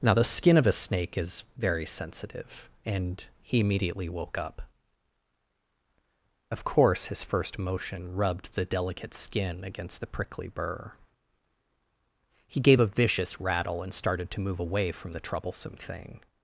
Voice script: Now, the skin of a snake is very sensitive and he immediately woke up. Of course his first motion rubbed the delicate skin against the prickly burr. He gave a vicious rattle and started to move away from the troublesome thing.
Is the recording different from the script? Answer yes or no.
no